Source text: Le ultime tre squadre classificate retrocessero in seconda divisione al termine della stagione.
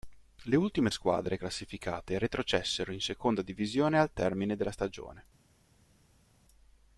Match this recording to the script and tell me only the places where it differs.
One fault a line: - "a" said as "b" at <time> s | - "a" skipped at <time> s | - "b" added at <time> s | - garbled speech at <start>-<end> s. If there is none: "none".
- "tre" skipped at 0.9 s